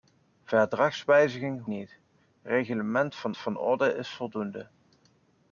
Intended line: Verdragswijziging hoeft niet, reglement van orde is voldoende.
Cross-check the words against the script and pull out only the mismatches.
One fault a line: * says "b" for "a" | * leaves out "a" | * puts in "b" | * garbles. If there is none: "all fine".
* leaves out "hoeft"
* puts in "van"